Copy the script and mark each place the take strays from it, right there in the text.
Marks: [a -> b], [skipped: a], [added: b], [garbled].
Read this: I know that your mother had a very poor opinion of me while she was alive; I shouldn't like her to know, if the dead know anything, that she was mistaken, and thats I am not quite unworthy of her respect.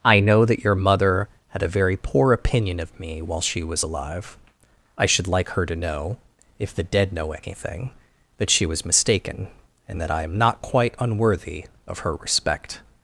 I know that your mother had a very poor opinion of me while she was alive; I [shouldn't -> should] like her to know, if the dead know anything, that she was mistaken, and [thats -> that] I am not quite unworthy of her respect.